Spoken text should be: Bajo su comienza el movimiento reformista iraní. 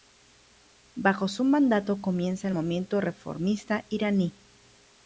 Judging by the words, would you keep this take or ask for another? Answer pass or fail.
fail